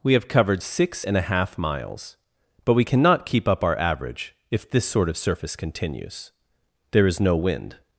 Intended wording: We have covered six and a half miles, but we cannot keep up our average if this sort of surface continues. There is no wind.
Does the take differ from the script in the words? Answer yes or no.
no